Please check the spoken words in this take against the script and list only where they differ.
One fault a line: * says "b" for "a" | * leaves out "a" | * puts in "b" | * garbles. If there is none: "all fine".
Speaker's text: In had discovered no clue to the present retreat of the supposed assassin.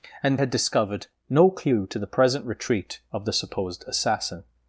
all fine